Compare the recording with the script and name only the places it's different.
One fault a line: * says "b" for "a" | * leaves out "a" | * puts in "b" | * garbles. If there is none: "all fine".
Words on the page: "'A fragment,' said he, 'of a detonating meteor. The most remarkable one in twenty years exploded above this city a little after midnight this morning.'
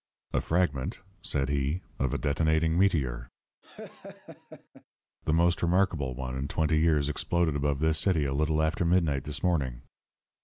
all fine